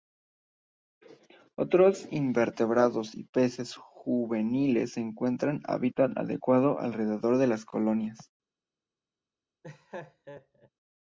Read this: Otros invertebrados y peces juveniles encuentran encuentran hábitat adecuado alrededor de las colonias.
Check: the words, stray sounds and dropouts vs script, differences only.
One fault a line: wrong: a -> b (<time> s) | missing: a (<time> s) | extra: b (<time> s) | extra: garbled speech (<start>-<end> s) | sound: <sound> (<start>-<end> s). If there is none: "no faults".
missing: encuentran (5.6 s)
sound: laugh (9.6-10.7 s)